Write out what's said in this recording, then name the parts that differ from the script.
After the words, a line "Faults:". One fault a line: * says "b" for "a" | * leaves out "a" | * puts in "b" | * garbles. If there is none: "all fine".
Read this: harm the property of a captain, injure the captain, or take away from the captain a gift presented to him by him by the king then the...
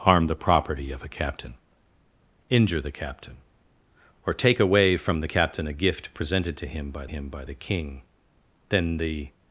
harm the property of a captain, injure the captain, or take away from the captain a gift presented to him by him by the king then the...
Faults:
all fine